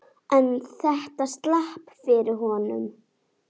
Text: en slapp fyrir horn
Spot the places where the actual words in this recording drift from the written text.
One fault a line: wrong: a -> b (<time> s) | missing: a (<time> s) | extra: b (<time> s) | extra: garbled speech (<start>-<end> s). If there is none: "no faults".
extra: þetta (0.8 s)